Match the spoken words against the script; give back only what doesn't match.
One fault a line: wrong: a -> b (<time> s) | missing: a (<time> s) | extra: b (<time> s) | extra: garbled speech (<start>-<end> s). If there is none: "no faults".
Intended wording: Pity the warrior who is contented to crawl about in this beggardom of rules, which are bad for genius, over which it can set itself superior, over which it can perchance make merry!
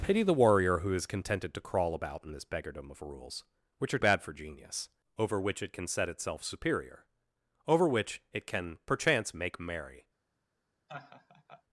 no faults